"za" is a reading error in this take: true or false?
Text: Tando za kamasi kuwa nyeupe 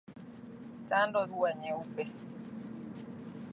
true